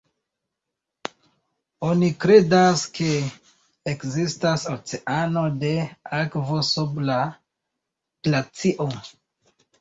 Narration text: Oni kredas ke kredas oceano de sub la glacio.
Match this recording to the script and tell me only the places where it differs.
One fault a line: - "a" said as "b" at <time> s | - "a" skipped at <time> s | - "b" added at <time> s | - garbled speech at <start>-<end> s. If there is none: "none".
- "kredas" said as "ekzistas" at 3.9 s
- "akvo" added at 6.2 s